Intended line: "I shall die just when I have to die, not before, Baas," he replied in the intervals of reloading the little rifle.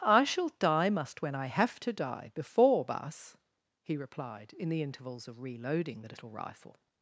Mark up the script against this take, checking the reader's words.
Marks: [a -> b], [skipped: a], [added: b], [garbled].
"I shall die [just -> must] when I have to die, [skipped: not] before, Baas," he replied in the intervals of reloading the little rifle.